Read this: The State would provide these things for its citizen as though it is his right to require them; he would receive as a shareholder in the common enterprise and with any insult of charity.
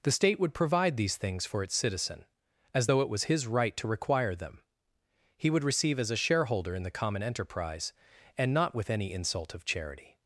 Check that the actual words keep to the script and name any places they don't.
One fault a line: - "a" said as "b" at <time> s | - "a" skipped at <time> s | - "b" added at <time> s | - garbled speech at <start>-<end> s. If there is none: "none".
- "is" said as "was" at 3.1 s
- "not" added at 8.5 s